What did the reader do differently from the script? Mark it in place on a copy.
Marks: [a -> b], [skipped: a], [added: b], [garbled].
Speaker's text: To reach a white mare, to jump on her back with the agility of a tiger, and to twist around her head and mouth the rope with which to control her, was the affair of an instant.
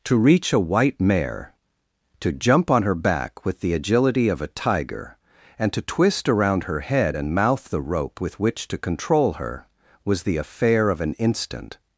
To reach a white mare, to jump on her back with the agility of a tiger, and to twist around her head and mouth the rope with which to control her, was the affair of an instant.